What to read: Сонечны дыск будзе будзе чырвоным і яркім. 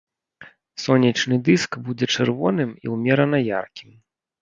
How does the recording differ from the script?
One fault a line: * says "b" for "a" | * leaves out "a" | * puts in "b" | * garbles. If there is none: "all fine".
* leaves out "будзе"
* puts in "ўмерана"